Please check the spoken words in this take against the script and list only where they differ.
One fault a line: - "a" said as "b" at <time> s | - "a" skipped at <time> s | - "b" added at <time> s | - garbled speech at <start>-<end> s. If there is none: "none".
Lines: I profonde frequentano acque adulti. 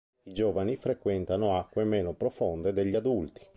- "profonde" said as "giovani" at 0.3 s
- "meno profonde degli" added at 1.8 s